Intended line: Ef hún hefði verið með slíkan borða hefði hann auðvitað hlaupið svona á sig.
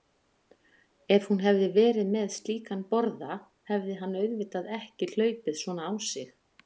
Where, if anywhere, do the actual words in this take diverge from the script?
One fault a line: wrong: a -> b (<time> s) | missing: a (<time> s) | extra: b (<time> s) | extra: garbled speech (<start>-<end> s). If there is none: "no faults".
extra: ekki (4.8 s)